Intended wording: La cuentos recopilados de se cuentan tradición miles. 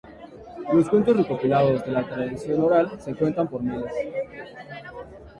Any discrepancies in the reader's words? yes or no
yes